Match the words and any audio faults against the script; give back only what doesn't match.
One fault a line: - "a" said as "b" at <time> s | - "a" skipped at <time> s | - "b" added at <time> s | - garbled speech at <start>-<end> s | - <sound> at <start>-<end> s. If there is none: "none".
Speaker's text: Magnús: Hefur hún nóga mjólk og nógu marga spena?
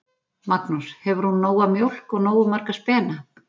none